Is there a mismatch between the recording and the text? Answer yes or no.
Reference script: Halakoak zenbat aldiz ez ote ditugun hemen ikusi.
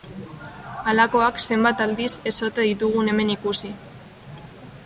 no